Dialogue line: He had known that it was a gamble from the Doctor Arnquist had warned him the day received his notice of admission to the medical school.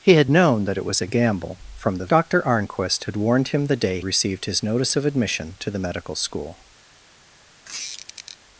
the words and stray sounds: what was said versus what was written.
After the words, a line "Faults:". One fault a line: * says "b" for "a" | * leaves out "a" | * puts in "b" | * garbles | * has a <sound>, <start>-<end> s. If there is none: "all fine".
He had known that it was a gamble from the Doctor Arnquist had warned him the day received his notice of admission to the medical school.
Faults:
* has a squeak, 7.6-8.4 s